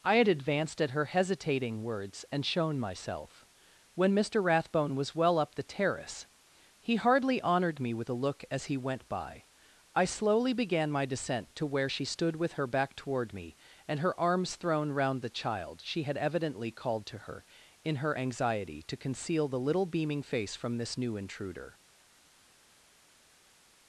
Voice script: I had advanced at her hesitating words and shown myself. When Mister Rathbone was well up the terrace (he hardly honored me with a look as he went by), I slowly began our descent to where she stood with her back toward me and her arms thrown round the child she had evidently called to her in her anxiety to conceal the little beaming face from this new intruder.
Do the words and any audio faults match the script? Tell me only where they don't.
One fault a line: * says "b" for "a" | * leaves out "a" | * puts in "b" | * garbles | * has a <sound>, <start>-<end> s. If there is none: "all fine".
* says "my" for "our"